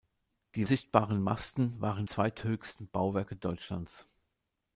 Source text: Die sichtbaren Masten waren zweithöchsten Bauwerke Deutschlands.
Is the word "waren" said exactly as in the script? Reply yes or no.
yes